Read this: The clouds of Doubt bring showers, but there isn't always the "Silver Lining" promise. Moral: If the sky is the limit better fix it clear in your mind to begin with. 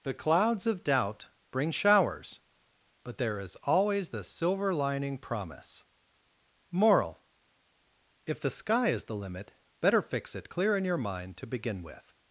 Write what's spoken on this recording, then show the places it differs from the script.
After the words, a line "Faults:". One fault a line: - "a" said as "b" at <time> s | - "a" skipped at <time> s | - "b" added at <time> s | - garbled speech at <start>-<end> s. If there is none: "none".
The clouds of Doubt bring showers, but there is always the "Silver Lining" promise. Moral: If the sky is the limit better fix it clear in your mind to begin with.
Faults:
- "isn't" said as "is" at 3.4 s